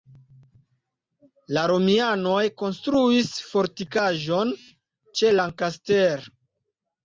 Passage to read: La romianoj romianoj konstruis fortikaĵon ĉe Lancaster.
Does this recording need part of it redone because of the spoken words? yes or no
yes